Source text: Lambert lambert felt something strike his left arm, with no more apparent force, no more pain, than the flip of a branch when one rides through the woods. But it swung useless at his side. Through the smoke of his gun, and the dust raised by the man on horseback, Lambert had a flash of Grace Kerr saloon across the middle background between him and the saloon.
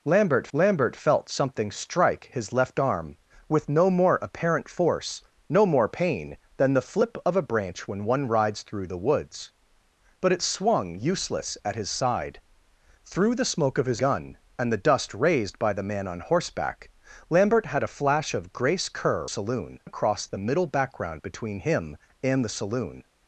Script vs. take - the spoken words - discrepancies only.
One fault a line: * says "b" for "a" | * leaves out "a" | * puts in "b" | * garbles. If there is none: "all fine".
all fine